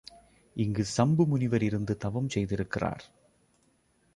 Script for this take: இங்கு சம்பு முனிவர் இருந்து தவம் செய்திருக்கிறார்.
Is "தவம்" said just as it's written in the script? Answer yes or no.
yes